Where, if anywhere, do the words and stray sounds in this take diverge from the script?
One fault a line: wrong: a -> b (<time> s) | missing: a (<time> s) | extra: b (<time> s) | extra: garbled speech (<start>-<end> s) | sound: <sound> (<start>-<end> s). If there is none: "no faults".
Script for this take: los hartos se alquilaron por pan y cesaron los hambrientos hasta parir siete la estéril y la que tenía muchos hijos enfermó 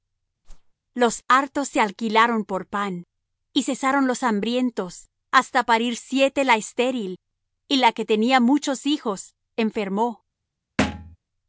sound: whoosh (0.4-0.7 s)
sound: thud (10.8-11.2 s)